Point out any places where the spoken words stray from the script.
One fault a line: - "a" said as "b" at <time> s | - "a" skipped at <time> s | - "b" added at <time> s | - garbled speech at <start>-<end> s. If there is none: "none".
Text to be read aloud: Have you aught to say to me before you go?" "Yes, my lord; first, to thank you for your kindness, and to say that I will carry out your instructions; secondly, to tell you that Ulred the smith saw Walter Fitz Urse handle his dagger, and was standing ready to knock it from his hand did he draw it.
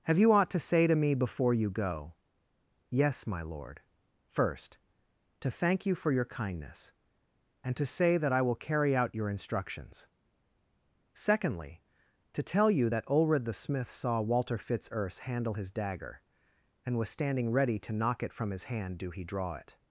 - "did" said as "do" at 19.0 s